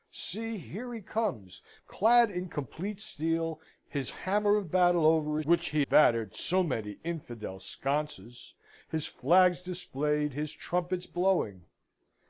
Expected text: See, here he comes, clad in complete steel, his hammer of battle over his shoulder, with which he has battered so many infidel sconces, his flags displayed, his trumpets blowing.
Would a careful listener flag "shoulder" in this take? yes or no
yes